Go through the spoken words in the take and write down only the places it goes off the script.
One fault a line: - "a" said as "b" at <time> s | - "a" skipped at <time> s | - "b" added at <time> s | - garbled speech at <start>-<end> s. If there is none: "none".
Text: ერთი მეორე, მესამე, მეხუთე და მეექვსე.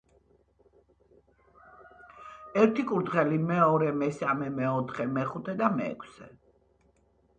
- "კურდღელი" added at 2.9 s
- "მეოთხე" added at 4.6 s